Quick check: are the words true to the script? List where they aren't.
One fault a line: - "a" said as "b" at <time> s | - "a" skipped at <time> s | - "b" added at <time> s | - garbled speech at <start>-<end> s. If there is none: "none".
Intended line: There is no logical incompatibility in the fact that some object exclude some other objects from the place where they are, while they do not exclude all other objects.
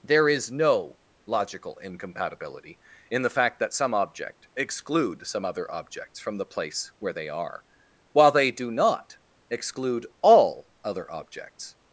none